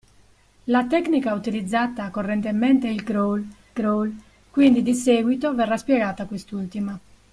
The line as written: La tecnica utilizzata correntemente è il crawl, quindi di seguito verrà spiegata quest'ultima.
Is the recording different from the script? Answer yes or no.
yes